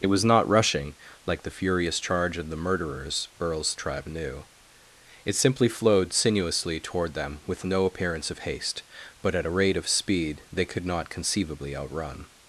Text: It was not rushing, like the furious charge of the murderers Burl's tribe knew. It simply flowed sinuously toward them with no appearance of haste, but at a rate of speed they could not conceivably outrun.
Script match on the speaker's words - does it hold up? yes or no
yes